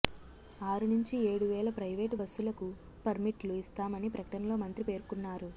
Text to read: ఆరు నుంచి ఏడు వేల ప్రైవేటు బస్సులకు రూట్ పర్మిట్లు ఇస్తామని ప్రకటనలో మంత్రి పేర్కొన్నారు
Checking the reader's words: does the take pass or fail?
fail